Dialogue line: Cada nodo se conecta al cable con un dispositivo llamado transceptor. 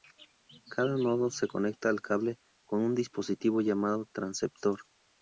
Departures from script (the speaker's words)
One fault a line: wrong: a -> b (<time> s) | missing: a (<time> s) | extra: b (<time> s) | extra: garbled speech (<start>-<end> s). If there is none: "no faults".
no faults